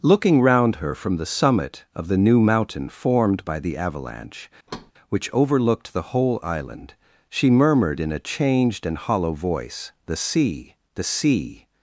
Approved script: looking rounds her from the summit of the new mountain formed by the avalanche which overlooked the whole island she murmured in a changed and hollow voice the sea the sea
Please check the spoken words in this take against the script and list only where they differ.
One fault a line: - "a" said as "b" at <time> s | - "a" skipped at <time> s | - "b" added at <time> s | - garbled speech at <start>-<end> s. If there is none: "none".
- "rounds" said as "round" at 0.4 s